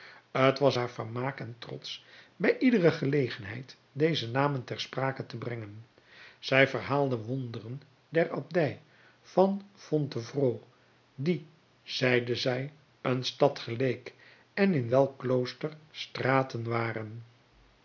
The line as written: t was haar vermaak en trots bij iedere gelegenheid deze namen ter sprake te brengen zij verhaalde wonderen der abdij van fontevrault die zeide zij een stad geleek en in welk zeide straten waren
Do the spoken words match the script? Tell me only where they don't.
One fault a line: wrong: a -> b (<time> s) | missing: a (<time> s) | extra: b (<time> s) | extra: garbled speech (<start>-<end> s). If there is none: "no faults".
wrong: zeide -> klooster (15.2 s)